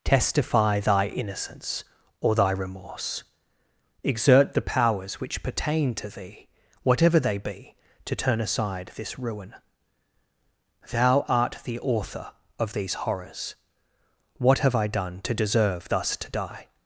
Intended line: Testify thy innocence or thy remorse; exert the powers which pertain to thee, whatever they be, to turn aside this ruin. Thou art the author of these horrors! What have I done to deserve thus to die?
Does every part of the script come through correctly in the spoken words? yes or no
yes